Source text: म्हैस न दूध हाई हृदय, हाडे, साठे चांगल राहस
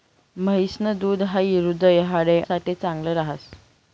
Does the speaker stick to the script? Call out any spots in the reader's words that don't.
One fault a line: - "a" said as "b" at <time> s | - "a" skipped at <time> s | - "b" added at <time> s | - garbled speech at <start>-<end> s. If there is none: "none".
none